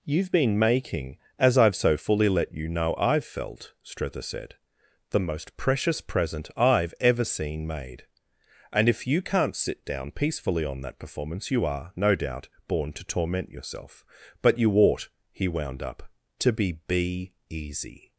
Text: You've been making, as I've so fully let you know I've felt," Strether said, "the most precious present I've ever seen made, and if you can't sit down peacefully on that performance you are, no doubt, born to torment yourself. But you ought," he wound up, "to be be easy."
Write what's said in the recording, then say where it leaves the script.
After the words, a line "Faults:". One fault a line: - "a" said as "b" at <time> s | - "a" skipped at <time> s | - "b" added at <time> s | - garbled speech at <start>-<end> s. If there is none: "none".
You've been making, as I've so fully let you know I've felt," Strether said, "the most precious present I've ever seen made, and if you can't sit down peacefully on that performance you are, no doubt, born to torment yourself. But you ought," he wound up, "to be be easy."
Faults:
none